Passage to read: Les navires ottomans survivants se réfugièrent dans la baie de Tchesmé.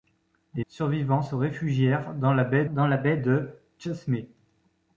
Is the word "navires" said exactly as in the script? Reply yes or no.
no